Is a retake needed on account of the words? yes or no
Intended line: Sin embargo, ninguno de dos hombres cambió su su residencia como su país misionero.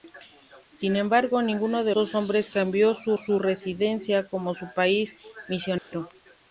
no